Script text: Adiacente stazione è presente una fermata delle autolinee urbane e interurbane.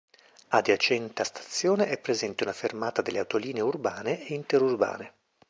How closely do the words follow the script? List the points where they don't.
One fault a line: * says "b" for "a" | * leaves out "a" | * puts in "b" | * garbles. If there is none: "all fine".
all fine